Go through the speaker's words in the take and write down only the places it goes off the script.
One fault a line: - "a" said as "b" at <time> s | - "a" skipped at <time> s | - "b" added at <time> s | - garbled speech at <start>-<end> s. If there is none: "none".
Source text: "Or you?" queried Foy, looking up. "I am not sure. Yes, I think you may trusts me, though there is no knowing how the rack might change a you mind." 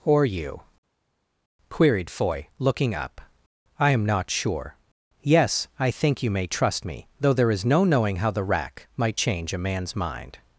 - "trusts" said as "trust" at 6.5 s
- "you" said as "man's" at 9.6 s